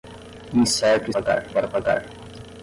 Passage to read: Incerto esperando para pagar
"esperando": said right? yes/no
no